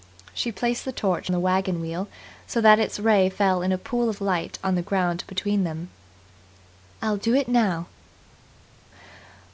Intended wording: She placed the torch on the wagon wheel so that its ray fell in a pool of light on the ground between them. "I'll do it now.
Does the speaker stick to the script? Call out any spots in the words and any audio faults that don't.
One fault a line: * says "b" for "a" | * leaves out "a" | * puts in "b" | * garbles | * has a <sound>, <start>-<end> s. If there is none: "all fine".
* leaves out "on"